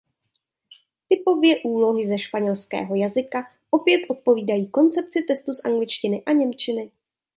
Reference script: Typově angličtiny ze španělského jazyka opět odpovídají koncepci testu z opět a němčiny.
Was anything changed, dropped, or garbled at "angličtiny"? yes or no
yes